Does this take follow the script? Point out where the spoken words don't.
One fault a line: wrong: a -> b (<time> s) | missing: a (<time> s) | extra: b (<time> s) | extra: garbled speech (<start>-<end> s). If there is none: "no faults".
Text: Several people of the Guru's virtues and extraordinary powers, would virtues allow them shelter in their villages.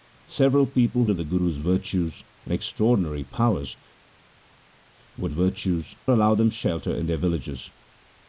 no faults